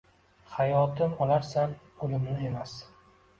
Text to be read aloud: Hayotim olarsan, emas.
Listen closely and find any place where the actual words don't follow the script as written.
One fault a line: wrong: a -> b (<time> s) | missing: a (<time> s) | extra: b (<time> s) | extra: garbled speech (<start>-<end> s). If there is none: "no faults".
extra: o‘limni (2.1 s)